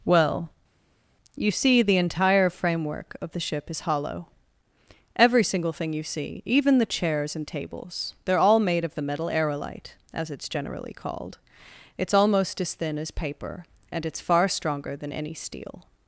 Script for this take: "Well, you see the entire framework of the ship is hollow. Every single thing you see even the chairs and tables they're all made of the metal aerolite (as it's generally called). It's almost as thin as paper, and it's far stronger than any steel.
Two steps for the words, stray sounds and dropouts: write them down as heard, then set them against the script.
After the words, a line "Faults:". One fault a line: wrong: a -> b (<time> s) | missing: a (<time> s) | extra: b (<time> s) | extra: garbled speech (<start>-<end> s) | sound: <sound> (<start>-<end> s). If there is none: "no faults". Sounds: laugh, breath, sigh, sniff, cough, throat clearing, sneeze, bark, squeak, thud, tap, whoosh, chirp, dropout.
"Well, you see the entire framework of the ship is hollow. Every single thing you see even the chairs and tables they're all made of the metal aerolite (as it's generally called). It's almost as thin as paper, and it's far stronger than any steel.
Faults:
no faults